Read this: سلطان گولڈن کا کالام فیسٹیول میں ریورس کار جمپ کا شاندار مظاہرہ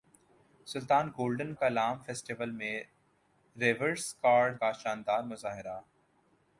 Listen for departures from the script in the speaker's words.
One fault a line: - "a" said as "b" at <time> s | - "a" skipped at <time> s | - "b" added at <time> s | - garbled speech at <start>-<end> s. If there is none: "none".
- "کا" skipped at 1.5 s
- "جمپ" skipped at 4.5 s